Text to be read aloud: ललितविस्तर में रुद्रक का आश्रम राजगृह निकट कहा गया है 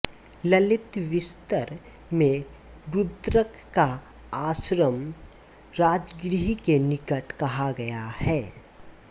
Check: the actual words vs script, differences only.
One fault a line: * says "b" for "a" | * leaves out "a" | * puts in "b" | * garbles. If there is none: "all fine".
* puts in "के"